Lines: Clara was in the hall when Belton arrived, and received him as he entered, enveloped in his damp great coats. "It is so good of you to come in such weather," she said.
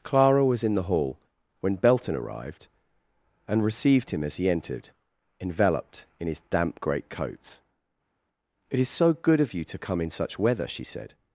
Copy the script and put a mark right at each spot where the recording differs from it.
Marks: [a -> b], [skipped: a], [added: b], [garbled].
Clara was in the hall when Belton arrived, and received him as he entered, enveloped in his damp great coats. "It is so good of you to come in such weather," she said.